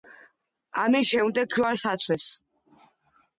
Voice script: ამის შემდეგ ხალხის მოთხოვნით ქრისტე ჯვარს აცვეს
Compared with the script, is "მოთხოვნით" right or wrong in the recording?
wrong